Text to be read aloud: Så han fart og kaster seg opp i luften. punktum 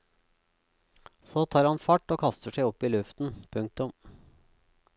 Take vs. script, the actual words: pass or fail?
fail